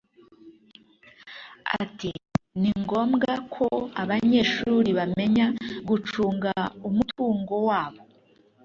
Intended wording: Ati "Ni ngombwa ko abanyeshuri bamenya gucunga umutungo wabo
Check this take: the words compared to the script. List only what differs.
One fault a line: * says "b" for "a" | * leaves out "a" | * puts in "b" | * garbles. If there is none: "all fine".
all fine